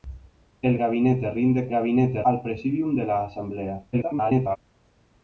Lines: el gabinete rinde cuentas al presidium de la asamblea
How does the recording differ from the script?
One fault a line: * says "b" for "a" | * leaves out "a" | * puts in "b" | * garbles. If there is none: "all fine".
* says "gabinete" for "cuentas"
* garbles